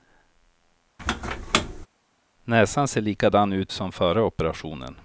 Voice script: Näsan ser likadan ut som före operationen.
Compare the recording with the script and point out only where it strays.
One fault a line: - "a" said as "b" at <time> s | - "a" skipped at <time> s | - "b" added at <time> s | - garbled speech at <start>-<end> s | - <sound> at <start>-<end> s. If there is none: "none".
- squeak at 1.0-1.9 s